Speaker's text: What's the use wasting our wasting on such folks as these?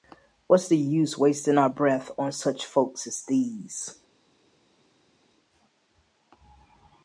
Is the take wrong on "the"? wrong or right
right